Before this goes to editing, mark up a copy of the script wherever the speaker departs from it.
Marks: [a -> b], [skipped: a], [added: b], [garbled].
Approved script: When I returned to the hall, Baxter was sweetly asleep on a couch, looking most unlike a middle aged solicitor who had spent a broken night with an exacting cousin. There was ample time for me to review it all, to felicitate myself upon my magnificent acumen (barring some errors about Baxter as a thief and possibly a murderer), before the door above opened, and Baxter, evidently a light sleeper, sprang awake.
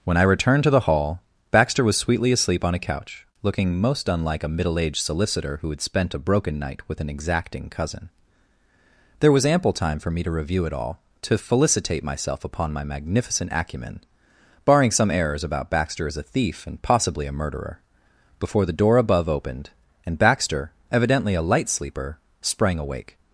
When I returned to the hall, Baxter was sweetly asleep on a couch, looking most unlike a middle aged solicitor who had spent a broken night with an exacting cousin. There was ample time for me to review it all, to felicitate myself upon my magnificent acumen (barring some errors about Baxter as a thief and possibly a murderer), before the door above opened, and Baxter, evidently a light sleeper, sprang awake.